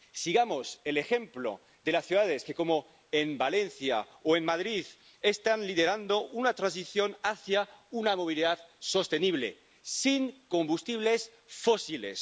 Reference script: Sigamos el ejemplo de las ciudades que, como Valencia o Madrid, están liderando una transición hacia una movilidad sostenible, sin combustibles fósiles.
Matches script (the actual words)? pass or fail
pass